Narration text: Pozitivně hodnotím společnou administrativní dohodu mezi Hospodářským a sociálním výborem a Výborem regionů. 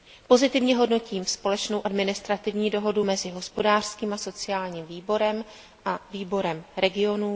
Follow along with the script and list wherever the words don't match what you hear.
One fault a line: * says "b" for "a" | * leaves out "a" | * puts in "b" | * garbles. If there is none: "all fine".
all fine